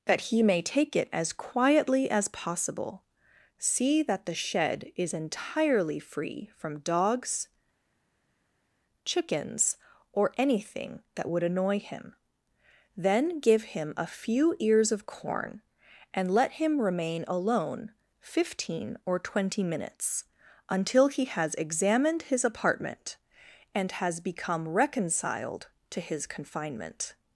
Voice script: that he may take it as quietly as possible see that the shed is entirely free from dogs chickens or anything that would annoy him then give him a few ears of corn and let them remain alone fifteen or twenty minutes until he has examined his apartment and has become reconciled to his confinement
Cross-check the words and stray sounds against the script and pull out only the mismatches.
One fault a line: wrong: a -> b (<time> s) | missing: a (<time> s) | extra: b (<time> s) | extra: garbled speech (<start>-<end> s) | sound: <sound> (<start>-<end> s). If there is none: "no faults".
wrong: them -> him (16.5 s)